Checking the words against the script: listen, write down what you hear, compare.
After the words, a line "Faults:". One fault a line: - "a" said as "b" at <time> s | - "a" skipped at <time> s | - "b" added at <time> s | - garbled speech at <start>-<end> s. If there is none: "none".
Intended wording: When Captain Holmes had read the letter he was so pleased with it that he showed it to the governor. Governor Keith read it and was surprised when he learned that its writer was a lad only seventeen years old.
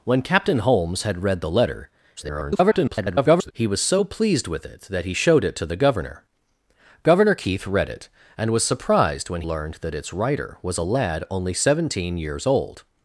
When Captain Holmes had read the letter [garbled] he was so pleased with it that he showed it to the governor. Governor Keith read it and was surprised when learned that its writer was a lad only seventeen years old.
Faults:
- garbled speech at 2.2-3.5 s
- "he" skipped at 9.4 s